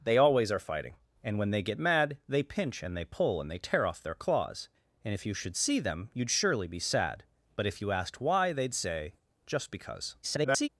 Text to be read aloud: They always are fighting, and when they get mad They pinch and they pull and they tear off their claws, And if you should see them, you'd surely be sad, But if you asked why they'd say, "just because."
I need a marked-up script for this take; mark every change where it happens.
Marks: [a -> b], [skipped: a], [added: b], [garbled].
They always are fighting, and when they get mad They pinch and they pull and they tear off their claws, And if you should see them, you'd surely be sad, But if you asked why they'd say, "just because." [garbled]